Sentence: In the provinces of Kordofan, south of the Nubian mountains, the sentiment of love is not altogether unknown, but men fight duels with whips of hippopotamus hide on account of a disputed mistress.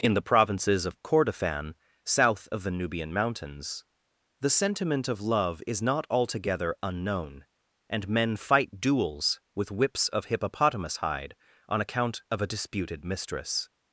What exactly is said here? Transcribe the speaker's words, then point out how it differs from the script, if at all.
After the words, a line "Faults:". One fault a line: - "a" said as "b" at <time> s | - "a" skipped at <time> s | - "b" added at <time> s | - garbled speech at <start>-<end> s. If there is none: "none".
In the provinces of Kordofan, south of the Nubian mountains, the sentiment of love is not altogether unknown, and men fight duels with whips of hippopotamus hide on account of a disputed mistress.
Faults:
- "but" said as "and" at 7.9 s